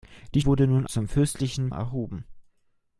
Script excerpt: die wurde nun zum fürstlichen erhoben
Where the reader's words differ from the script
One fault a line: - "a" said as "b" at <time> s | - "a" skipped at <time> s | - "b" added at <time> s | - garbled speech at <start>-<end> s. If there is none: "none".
none